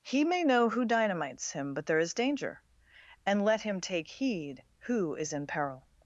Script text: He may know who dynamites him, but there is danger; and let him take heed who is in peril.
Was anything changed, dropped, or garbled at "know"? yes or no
no